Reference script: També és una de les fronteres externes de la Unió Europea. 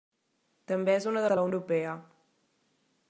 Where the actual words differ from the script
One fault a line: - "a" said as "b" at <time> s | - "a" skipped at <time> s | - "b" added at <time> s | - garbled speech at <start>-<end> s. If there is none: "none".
- "les fronteres externes" skipped at 1.3 s
- "Unió" skipped at 1.5 s